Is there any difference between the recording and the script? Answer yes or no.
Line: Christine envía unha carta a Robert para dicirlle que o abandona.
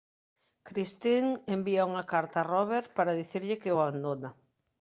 no